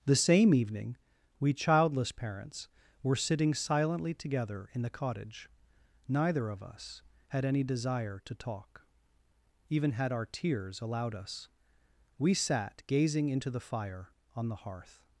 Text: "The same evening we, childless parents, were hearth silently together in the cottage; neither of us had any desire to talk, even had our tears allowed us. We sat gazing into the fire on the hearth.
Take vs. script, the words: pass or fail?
fail